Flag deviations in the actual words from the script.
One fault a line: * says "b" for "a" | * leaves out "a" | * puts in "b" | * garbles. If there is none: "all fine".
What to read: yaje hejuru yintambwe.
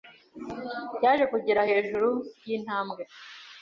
* puts in "kugera"